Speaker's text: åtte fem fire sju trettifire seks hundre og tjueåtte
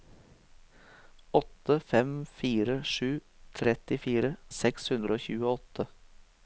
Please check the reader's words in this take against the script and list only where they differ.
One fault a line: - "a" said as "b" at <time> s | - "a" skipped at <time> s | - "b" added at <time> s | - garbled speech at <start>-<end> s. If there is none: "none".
none